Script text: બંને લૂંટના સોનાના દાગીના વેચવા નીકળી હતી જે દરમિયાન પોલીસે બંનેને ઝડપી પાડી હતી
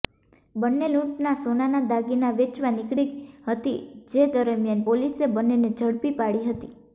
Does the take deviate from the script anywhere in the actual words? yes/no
no